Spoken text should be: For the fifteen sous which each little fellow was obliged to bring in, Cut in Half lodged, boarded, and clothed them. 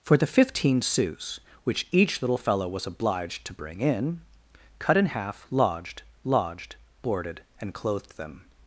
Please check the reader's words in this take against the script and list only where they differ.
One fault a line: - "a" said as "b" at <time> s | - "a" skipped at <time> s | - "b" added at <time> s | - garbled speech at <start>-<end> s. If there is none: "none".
- "lodged" added at 6.2 s